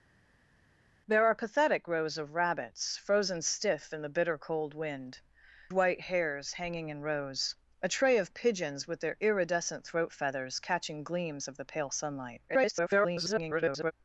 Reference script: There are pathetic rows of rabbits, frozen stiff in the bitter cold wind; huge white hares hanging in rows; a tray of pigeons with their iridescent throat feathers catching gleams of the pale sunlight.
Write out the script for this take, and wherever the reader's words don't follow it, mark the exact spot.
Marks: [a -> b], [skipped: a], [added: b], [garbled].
There are pathetic rows of rabbits, frozen stiff in the bitter cold wind; [skipped: huge] white hares hanging in rows; a tray of pigeons with their iridescent throat feathers catching gleams of the pale sunlight. [garbled]